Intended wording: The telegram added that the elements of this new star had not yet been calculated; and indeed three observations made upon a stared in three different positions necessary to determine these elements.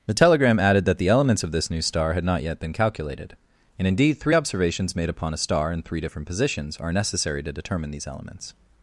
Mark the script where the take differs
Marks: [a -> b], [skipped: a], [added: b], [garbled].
The telegram added that the elements of this new star had not yet been calculated; and indeed three observations made upon a [stared -> star] in three different positions [added: are] necessary to determine these elements.